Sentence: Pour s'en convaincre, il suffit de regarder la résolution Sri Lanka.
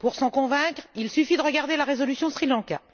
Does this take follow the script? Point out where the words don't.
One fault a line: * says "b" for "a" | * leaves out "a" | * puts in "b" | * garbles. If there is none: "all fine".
all fine